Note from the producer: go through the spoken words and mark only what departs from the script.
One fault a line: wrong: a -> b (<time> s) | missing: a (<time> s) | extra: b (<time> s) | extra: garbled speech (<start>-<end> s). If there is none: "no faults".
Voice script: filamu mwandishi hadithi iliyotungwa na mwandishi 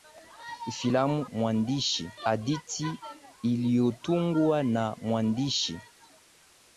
no faults